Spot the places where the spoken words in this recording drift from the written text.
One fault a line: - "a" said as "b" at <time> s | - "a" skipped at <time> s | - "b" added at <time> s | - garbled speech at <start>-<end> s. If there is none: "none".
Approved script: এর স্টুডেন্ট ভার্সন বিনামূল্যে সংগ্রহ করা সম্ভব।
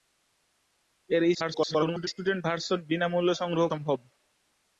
- garbled speech at 1.3-2.1 s
- "করা" skipped at 3.6 s